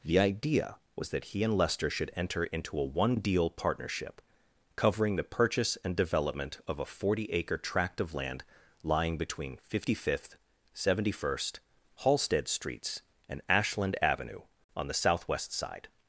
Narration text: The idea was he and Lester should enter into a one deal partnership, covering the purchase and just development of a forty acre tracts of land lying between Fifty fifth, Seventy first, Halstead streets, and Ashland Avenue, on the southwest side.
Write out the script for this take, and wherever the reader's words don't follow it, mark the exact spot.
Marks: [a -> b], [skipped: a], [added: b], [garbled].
The idea was [added: that] he and Lester should enter into a one deal partnership, covering the purchase and [skipped: just] development of a forty acre [tracts -> tract] of land lying between Fifty fifth, Seventy first, Halstead streets, and Ashland Avenue, on the southwest side.